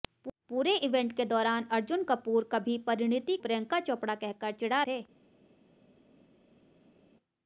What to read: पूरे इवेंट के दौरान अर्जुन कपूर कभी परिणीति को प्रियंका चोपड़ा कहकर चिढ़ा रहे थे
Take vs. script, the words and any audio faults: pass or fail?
fail